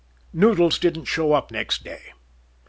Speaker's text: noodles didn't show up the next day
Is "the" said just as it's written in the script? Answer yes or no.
no